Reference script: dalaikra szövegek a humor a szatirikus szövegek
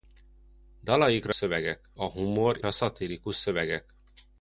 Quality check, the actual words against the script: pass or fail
pass